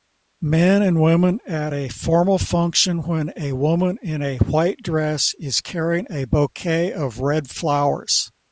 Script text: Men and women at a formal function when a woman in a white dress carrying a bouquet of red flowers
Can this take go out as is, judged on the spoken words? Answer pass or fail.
fail